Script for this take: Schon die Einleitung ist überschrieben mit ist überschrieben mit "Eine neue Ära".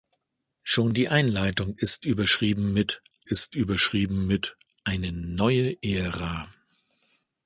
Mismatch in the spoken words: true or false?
false